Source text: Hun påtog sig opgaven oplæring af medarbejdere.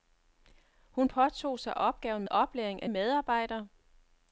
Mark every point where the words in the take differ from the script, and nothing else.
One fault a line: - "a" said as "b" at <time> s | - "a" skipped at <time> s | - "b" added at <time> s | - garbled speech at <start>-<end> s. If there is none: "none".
none